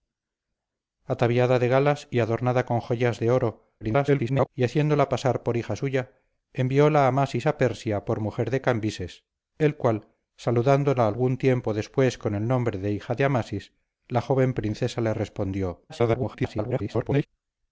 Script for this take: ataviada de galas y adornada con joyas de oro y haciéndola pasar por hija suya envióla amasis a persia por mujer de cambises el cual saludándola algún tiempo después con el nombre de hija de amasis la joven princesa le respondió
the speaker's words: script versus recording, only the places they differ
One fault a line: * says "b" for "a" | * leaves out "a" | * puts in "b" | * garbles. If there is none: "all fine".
* garbles
* garbles